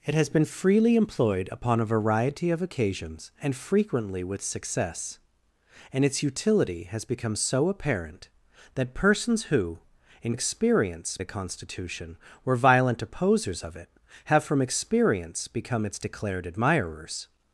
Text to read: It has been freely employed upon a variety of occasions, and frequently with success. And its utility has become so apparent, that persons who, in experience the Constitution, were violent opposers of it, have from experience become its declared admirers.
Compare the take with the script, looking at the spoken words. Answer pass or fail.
pass